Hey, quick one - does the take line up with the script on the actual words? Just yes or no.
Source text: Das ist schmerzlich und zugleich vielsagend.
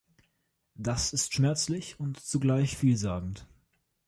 yes